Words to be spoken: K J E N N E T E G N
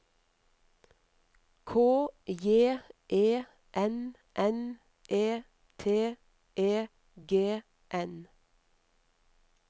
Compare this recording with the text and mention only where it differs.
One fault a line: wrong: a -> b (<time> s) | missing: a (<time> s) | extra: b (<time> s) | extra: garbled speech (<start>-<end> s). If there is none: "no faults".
no faults